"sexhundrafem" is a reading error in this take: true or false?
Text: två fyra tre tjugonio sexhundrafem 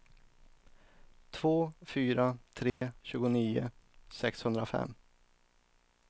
false